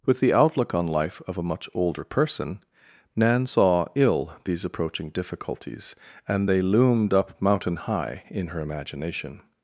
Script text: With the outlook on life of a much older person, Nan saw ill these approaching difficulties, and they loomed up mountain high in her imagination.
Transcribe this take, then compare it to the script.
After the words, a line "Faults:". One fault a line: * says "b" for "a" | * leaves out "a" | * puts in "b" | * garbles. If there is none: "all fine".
With the outlook on life of a much older person, Nan saw ill these approaching difficulties, and they loomed up mountain high in her imagination.
Faults:
all fine